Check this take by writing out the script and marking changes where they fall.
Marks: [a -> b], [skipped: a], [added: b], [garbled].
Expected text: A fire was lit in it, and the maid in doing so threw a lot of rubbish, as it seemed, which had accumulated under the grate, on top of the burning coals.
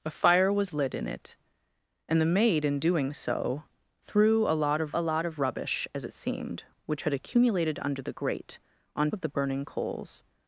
A fire was lit in it, and the maid in doing so threw a lot of [added: a lot of] rubbish, as it seemed, which had accumulated under the grate, on [skipped: top] of the burning coals.